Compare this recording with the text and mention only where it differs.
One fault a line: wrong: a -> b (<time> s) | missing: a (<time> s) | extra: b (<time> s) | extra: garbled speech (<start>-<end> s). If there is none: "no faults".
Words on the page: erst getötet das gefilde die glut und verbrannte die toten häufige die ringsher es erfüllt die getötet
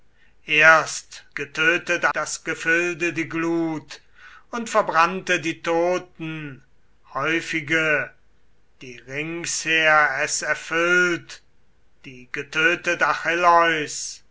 no faults